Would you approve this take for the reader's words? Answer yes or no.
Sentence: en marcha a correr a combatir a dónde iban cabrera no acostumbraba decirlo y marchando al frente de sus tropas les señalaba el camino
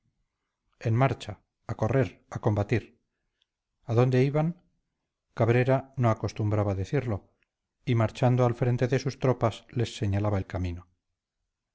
yes